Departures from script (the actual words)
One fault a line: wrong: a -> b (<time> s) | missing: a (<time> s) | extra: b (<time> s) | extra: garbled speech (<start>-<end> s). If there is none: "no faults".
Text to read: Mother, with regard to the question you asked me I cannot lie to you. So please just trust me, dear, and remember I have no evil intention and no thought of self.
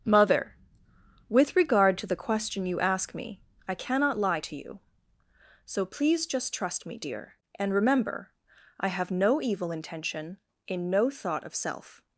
wrong: asked -> ask (2.8 s)
wrong: and -> in (10.7 s)